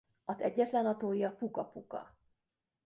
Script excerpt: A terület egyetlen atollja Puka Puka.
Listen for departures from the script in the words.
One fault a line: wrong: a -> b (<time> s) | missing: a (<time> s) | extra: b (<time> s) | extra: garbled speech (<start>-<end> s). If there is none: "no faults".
missing: terület (0.4 s)